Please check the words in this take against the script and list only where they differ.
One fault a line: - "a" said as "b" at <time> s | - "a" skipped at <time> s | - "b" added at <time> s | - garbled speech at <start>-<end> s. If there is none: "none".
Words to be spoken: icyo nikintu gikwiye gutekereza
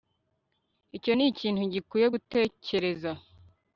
none